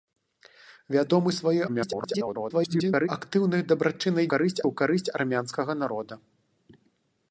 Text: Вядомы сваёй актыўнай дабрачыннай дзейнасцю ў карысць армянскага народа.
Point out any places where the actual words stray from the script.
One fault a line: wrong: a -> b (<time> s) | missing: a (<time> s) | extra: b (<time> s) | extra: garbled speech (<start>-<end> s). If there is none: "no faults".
extra: garbled speech (1.7-3.1 s)
wrong: дзейнасцю -> карысць (4.3 s)